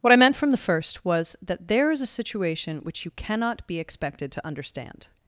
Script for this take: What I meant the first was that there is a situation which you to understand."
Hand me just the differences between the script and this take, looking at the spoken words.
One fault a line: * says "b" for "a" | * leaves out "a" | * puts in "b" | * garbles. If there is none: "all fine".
* puts in "from"
* puts in "cannot be expected"